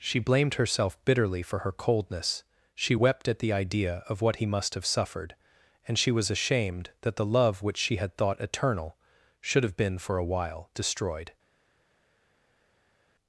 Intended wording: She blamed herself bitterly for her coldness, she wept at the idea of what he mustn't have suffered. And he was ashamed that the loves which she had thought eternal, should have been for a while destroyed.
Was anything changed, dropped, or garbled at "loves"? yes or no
yes